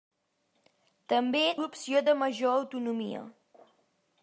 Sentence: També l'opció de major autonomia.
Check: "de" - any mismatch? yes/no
no